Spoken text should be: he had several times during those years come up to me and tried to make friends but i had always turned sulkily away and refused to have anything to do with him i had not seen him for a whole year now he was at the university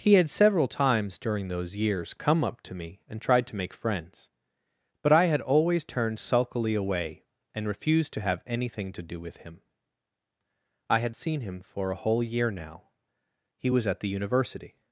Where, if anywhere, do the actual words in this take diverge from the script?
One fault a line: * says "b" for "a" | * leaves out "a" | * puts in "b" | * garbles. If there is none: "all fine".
* leaves out "not"